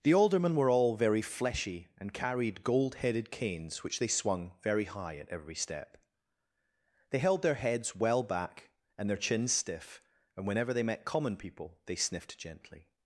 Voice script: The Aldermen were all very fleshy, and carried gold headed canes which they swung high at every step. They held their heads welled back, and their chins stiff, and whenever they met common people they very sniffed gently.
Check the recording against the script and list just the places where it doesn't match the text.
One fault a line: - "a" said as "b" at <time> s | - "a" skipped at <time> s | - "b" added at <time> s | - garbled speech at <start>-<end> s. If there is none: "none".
- "very" added at 4.6 s
- "welled" said as "well" at 8.0 s
- "very" skipped at 11.9 s